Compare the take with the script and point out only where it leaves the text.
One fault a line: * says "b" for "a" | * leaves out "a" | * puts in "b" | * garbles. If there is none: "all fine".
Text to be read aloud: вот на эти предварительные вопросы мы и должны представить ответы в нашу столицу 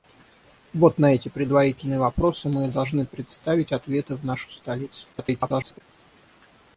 * garbles